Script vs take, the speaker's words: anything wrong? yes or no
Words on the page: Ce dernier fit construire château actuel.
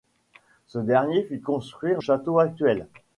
no